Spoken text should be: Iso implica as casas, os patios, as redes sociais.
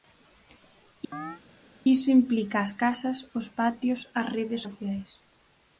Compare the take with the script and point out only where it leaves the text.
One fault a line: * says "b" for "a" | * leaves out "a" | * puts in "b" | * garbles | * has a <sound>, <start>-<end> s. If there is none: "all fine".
* has a chirp, 1.1-1.4 s